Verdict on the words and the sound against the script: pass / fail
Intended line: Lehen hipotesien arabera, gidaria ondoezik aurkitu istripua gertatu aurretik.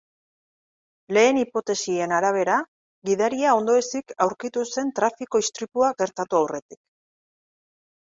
fail